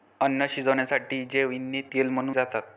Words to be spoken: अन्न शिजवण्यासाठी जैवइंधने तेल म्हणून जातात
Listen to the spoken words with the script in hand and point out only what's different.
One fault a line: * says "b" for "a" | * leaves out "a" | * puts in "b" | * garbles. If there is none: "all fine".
all fine